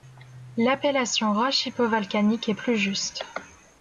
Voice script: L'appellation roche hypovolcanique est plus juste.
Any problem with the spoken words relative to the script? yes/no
no